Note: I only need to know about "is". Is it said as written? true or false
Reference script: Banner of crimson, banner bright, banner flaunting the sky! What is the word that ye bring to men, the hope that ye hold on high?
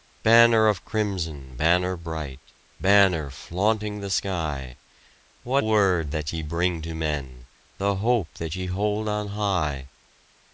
false